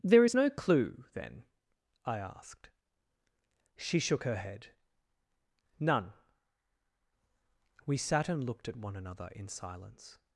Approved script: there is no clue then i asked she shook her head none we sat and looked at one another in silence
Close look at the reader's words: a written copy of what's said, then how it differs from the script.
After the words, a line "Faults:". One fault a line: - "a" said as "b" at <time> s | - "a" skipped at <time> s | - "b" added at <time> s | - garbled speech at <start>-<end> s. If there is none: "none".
there is no clue then i asked she shook her head none we sat and looked at one another in silence
Faults:
none